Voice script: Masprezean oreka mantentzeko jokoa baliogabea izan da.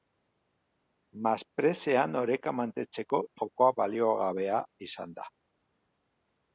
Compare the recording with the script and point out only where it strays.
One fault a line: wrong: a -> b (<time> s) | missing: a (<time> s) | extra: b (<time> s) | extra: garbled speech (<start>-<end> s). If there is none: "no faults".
no faults